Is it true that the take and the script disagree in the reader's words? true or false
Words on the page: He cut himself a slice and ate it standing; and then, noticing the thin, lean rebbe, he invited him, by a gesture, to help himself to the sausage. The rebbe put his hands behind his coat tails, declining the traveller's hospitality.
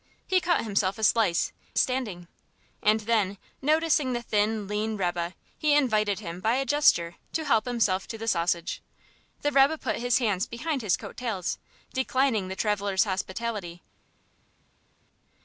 true